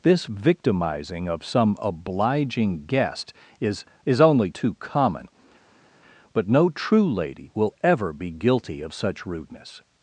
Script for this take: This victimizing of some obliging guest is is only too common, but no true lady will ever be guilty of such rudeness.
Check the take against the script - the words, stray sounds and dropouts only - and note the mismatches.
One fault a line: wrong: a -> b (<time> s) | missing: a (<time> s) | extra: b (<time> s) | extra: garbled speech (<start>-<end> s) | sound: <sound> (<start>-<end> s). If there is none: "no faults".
no faults